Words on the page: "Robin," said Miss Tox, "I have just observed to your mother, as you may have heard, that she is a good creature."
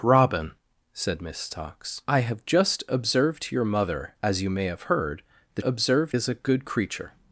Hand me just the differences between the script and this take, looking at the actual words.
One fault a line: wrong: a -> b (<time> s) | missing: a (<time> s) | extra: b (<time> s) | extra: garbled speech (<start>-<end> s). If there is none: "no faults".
wrong: she -> observed (5.6 s)